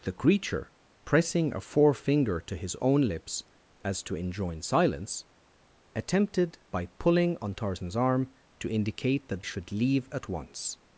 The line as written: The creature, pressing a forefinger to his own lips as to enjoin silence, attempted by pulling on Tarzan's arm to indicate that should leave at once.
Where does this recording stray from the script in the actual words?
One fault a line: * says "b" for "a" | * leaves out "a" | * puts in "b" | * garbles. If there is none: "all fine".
all fine